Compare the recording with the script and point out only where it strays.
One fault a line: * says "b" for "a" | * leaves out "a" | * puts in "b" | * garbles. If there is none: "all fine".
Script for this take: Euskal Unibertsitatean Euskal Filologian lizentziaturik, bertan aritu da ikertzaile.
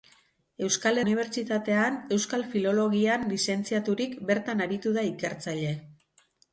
all fine